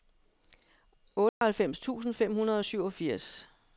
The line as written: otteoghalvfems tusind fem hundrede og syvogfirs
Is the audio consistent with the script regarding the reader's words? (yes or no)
yes